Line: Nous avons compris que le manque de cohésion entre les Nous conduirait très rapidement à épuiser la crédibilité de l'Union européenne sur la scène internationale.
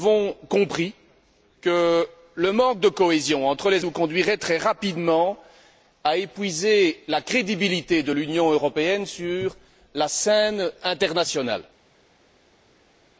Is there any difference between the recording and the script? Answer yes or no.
no